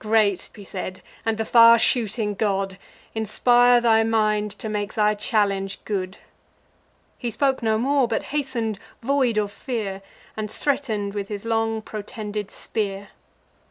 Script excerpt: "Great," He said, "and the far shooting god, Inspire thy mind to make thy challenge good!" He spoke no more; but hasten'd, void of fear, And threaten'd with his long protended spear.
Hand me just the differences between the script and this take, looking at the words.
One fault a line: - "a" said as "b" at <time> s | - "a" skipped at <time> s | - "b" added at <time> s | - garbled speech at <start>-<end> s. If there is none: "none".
none